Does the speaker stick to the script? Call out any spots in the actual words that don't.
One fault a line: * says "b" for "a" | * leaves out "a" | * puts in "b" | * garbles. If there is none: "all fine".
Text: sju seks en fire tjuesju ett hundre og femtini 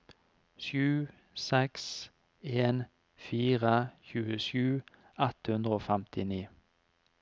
all fine